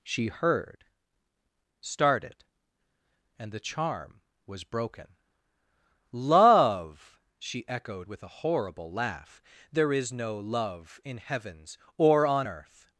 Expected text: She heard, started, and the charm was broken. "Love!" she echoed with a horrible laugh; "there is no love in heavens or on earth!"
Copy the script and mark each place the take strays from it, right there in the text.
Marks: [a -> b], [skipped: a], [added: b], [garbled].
She heard, started, and the charm was broken. "Love!" she echoed with a horrible laugh; "there is no love in heavens or on earth!"